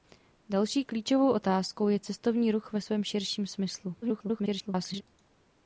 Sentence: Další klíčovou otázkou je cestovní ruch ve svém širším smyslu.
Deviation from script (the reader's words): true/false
true